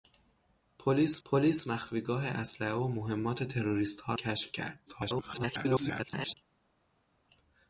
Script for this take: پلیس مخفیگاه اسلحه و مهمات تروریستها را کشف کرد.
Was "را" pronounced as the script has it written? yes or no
no